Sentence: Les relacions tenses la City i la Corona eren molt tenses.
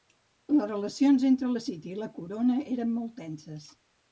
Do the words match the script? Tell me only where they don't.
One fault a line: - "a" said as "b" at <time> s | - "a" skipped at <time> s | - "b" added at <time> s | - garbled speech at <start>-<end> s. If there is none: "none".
- "tenses" said as "entre" at 1.3 s